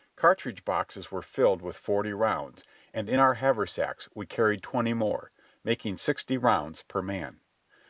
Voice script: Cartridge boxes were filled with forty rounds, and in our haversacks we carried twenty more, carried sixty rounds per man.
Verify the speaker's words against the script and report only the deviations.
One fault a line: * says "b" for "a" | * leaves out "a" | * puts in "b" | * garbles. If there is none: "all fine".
* says "making" for "carried"